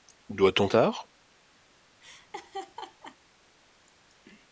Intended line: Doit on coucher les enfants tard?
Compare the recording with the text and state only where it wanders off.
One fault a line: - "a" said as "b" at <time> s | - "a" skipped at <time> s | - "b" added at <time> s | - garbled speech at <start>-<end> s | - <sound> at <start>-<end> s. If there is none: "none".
- "coucher les enfants" skipped at 0.7 s
- laugh at 2.0-3.2 s